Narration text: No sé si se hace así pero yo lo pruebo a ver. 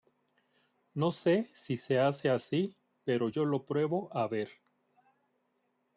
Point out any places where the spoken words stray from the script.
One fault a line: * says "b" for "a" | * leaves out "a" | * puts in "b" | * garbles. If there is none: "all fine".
all fine